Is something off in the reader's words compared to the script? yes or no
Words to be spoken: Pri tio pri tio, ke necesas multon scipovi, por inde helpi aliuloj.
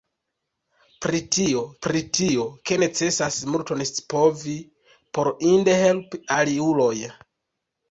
no